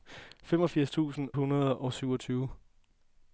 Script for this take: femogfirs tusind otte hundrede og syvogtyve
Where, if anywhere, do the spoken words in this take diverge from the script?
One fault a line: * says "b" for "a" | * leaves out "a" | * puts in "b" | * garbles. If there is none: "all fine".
* leaves out "otte"